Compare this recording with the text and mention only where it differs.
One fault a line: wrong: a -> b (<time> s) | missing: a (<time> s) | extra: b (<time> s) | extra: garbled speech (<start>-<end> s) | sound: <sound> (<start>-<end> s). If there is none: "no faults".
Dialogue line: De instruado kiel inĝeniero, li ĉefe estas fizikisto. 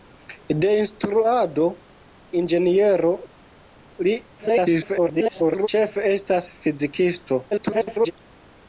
missing: kiel (1.7 s)
extra: garbled speech (4.4-5.7 s)
extra: garbled speech (7.5-8.1 s)